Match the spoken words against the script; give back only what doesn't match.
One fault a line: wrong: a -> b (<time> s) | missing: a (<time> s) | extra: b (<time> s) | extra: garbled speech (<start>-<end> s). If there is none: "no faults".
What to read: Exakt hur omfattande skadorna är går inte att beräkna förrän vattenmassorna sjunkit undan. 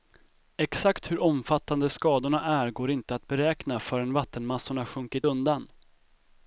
no faults